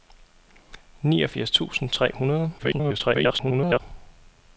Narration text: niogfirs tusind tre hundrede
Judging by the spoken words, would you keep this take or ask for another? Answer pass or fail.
fail